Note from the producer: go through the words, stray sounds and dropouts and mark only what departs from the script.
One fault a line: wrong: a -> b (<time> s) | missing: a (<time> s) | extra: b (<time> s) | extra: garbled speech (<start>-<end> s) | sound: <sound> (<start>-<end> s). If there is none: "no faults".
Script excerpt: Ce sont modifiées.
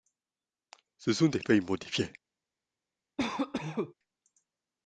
extra: des feuilles (1.3 s)
sound: cough (3.2-3.9 s)